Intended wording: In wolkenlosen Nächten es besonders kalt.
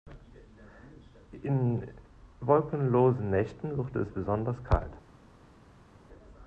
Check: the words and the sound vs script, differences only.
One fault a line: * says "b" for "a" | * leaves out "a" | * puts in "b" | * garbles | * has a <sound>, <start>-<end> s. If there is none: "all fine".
* puts in "wird"